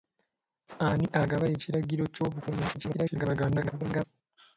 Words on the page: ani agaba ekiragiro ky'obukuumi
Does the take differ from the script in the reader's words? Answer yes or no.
yes